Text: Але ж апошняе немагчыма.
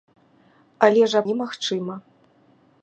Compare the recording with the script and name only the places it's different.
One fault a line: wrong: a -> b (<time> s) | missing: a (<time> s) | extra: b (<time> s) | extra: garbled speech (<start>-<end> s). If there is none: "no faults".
missing: апошняе (1.2 s)